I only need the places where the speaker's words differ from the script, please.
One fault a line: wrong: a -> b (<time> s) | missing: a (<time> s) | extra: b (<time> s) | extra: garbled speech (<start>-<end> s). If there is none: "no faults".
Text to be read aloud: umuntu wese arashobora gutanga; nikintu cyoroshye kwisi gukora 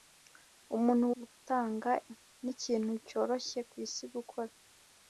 missing: wese arashobora (1.1 s)